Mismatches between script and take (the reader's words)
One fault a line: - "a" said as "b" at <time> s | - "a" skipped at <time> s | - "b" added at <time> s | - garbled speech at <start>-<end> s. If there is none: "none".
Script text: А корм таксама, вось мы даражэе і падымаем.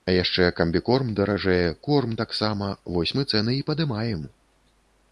- "яшчэ камбікорм даражэе" added at 0.1 s
- "даражэе" said as "цэны" at 3.3 s